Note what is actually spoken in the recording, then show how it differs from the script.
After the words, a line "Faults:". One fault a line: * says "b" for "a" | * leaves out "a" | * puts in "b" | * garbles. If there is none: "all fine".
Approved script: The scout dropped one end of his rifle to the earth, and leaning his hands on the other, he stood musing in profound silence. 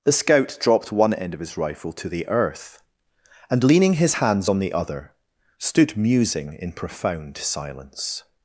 The scout dropped one end of his rifle to the earth, and leaning his hands on the other, stood musing in profound silence.
Faults:
* leaves out "he"